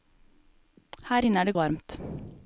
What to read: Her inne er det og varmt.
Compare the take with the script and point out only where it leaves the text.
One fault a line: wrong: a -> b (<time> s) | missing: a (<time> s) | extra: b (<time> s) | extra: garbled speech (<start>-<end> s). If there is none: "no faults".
no faults